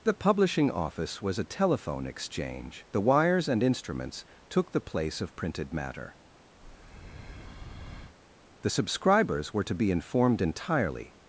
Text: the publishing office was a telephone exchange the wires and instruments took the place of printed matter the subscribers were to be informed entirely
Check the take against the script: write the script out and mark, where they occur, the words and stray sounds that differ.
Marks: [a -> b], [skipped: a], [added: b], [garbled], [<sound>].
the publishing office was a telephone exchange the wires and instruments took the place of printed matter [breath] the subscribers were to be informed entirely